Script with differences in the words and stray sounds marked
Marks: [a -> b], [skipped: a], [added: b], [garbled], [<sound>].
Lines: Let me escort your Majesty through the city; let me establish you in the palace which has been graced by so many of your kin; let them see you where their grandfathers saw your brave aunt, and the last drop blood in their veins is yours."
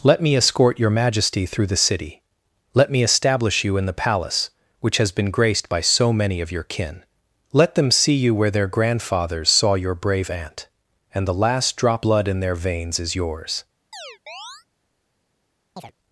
Let me escort your Majesty through the city; let me establish you in the palace which has been graced by so many of your kin; let them see you where their grandfathers saw your brave aunt, and the last drop blood in their veins is yours." [chirp] [chirp]